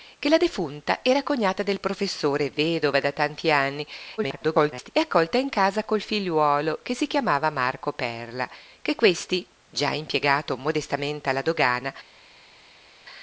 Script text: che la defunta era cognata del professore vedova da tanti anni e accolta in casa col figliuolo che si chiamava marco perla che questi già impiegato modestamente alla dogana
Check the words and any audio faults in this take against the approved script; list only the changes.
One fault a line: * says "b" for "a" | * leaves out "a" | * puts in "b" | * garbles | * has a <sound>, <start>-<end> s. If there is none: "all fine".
* garbles